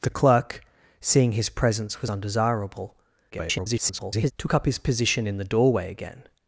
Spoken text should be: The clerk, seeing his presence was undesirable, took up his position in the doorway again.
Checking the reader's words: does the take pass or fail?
fail